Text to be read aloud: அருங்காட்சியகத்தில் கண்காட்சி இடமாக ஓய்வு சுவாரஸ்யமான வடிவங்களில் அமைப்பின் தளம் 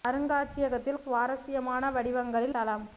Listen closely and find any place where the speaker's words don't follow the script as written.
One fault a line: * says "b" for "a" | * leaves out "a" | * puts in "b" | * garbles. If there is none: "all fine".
* leaves out "கண்காட்சி இடமாக ஓய்வு"
* leaves out "அமைப்பின்"